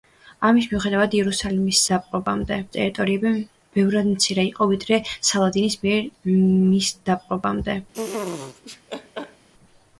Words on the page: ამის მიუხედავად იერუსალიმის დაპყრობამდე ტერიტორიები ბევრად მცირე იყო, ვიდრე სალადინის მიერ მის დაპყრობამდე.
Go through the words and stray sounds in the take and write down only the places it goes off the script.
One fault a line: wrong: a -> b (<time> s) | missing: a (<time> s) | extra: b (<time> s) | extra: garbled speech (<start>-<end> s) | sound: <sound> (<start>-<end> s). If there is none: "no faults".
sound: laugh (7.9-9.5 s)